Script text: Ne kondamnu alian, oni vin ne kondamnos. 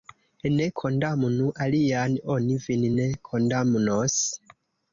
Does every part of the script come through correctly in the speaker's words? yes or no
yes